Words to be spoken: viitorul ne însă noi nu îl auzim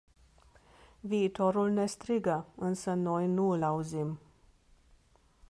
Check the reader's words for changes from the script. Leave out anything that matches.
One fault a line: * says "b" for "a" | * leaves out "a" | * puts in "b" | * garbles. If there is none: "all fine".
* puts in "strigă"